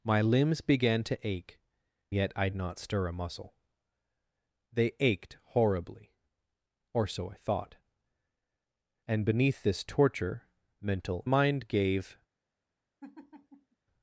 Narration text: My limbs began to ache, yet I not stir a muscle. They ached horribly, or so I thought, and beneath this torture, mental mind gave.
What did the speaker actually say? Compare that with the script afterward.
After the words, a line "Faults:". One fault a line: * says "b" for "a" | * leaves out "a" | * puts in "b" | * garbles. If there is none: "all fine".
My limbs began to ache, yet I not stir a muscle. They ached horribly, or so I thought, and beneath this torture, mental mind gave.
Faults:
all fine